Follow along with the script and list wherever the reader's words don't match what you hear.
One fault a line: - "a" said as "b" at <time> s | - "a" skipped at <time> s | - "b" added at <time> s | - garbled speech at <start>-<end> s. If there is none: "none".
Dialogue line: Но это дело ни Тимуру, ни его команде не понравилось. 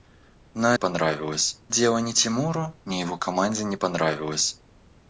- "это" said as "понравилось" at 0.7 s